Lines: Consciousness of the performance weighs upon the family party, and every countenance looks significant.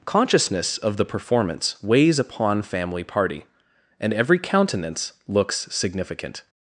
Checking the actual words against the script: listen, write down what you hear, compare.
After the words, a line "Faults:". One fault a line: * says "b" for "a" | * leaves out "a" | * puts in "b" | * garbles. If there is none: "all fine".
Consciousness of the performance weighs upon family party, and every countenance looks significant.
Faults:
* leaves out "the"